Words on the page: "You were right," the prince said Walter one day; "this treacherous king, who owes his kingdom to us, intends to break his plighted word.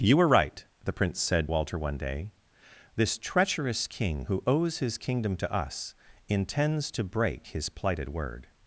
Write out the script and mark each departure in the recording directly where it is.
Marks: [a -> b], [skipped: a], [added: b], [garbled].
"You were right," the prince said Walter one day; "this treacherous king, who owes his kingdom to us, intends to break his plighted word.